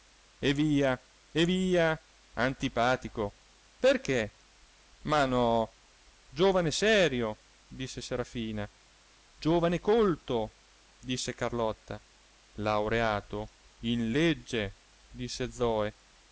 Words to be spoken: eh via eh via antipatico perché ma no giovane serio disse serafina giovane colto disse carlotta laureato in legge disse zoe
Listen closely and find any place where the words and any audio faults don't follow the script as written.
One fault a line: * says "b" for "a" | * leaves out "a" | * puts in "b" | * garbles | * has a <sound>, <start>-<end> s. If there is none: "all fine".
all fine